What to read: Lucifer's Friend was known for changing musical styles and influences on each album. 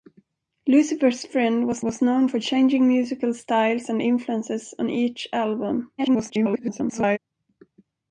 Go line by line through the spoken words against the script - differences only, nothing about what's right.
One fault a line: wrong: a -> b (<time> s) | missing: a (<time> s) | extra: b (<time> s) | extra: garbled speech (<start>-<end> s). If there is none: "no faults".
extra: was (1.8 s)
extra: garbled speech (6.0-7.2 s)